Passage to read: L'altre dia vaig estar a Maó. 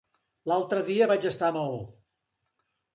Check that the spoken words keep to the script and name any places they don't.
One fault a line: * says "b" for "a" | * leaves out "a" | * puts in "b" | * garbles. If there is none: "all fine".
all fine